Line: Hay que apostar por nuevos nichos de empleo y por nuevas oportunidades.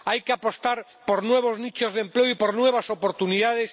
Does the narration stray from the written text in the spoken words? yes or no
no